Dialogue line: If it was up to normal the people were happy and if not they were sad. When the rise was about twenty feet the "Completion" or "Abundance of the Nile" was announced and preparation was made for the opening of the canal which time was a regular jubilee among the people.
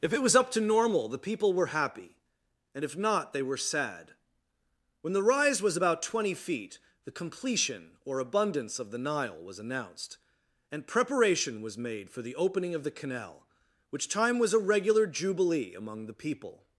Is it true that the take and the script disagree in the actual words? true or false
false